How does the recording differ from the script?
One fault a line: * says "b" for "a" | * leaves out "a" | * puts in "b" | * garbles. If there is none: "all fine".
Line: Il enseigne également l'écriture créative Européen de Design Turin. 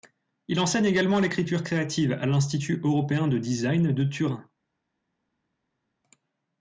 * puts in "à l'Institut"
* puts in "de"